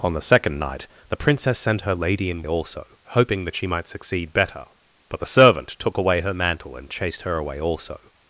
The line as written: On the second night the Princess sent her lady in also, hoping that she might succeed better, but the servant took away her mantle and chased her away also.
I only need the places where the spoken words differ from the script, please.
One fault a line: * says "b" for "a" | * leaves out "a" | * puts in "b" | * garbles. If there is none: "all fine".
all fine